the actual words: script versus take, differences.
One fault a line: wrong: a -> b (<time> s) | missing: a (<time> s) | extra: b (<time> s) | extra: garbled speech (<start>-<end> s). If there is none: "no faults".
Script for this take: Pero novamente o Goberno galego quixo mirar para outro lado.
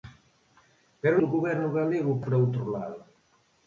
missing: novamente (1.2 s)
missing: quixo mirar (2.2 s)